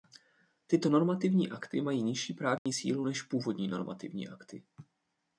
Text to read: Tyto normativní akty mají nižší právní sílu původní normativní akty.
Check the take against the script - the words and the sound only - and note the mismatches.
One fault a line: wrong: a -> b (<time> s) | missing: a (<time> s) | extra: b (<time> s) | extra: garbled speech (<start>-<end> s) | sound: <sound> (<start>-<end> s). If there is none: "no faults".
sound: dropout (2.6-2.7 s)
extra: než (3.0 s)